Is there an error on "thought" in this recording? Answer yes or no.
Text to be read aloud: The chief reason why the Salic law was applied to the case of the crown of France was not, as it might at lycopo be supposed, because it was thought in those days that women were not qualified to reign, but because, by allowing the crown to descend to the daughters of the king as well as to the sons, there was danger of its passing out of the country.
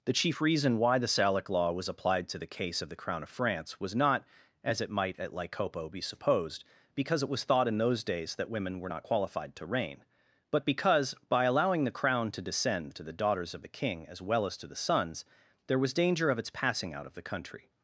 no